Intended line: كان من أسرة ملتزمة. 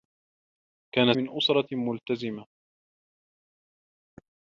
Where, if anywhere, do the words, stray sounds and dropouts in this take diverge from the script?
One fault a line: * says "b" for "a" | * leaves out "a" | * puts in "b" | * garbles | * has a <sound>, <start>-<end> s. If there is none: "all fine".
all fine